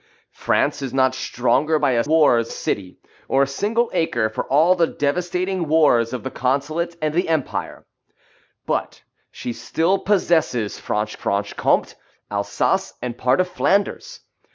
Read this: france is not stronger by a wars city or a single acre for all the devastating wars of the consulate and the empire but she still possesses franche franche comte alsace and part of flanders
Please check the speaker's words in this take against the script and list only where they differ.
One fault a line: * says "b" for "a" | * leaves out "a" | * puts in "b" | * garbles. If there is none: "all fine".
all fine